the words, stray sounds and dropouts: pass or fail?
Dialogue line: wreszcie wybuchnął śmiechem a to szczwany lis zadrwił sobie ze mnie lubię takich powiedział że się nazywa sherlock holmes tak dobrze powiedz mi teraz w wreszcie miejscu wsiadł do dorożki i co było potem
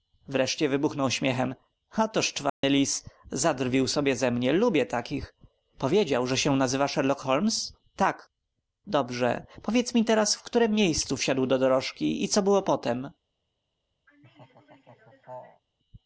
fail